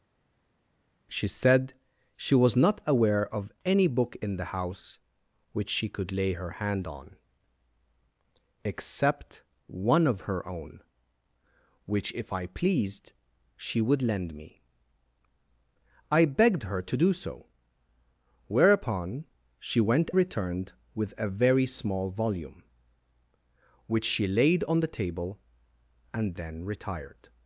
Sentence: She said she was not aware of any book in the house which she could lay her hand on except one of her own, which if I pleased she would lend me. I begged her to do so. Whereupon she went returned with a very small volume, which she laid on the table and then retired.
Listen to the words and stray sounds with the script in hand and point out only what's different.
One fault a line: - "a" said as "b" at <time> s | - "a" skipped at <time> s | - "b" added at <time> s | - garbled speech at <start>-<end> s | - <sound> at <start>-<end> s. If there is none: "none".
none